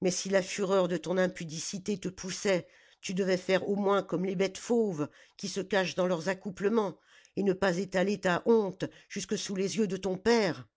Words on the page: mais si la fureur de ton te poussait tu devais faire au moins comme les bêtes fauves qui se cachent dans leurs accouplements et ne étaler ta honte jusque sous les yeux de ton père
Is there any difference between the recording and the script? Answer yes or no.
yes